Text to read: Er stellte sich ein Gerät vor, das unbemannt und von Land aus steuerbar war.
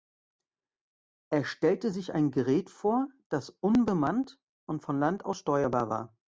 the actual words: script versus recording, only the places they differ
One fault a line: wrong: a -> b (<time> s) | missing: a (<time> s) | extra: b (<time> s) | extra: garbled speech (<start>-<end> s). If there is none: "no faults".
no faults